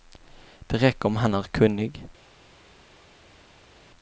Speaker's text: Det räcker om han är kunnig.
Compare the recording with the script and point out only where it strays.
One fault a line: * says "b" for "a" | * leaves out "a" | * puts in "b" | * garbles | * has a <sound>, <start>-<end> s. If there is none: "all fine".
all fine